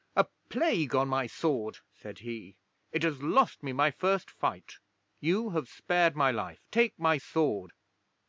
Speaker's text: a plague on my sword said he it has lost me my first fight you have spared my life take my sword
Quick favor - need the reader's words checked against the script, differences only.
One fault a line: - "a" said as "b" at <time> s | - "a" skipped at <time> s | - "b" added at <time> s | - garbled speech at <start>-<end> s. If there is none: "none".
none